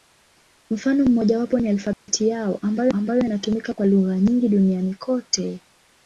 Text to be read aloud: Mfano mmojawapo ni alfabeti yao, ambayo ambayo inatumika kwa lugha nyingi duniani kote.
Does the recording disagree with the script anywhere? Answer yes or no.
no